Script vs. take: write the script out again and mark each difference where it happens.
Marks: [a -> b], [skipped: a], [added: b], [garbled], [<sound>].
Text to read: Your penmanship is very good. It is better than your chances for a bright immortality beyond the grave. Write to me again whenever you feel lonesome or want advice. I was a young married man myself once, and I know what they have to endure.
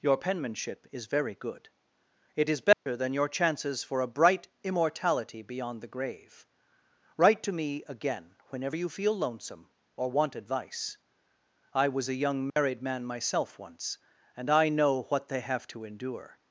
Your penmanship is very good. It is better [dropout] than your chances for a bright immortality beyond the grave. Write to me again whenever you feel lonesome or want advice. I was a young married [dropout] man myself once, and I know what they have to endure.